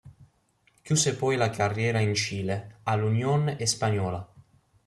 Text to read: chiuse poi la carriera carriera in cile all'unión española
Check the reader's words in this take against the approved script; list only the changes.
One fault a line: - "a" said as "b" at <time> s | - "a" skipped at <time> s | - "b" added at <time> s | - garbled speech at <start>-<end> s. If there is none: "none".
- "carriera" skipped at 2.0 s